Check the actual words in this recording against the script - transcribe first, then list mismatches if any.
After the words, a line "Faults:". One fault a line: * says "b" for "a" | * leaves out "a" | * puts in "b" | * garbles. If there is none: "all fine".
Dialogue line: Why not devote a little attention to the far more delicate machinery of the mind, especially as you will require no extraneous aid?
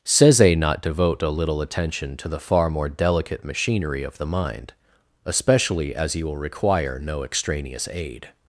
Seze not devote a little attention to the far more delicate machinery of the mind, especially as you will require no extraneous aid?
Faults:
* says "Seze" for "Why"